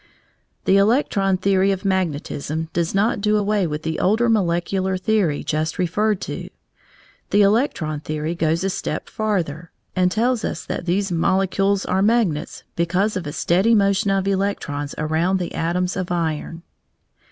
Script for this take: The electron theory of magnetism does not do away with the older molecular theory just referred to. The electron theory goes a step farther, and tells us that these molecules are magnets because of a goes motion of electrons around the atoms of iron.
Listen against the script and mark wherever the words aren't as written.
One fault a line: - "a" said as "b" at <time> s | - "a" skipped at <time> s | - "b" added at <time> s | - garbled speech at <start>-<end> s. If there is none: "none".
- "goes" said as "steady" at 13.3 s